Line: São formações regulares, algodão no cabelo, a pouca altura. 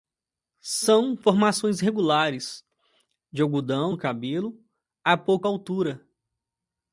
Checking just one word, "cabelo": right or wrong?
right